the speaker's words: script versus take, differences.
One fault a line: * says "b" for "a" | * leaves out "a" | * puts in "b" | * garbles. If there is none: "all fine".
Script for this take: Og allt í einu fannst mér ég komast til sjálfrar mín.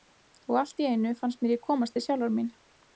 all fine